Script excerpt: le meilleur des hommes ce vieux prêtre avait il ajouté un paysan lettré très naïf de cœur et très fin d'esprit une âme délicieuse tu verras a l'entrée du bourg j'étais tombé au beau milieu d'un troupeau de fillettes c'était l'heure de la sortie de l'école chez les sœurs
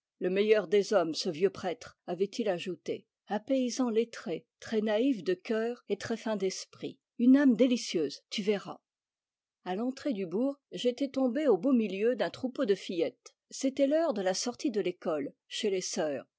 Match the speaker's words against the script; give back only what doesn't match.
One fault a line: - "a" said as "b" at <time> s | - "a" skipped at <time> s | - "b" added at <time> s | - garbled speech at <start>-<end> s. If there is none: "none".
none